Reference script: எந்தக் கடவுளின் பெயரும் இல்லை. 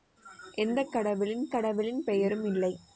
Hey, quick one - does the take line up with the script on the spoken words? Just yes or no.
no